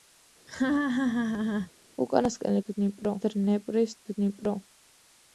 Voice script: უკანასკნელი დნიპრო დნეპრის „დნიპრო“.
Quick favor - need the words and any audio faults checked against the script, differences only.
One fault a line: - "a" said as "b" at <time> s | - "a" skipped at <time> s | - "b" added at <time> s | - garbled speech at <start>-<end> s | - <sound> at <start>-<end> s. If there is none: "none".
- laugh at 0.5-1.7 s